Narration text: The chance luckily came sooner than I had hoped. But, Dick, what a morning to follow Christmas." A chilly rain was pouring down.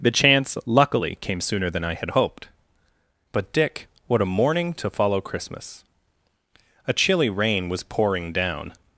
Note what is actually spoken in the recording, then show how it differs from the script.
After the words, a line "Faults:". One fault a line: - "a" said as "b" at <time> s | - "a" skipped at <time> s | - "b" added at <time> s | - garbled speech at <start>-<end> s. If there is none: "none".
The chance luckily came sooner than I had hoped. But, Dick, what a morning to follow Christmas." A chilly rain was pouring down.
Faults:
none